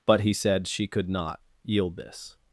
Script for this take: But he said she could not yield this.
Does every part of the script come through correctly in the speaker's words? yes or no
yes